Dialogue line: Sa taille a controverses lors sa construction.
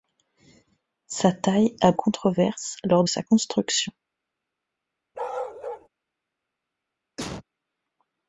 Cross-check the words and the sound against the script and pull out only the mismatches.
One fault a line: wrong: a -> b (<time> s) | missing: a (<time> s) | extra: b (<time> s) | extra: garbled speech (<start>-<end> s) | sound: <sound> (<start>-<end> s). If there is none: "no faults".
sound: bark (5.1-5.9 s)
sound: cough (7.2-7.4 s)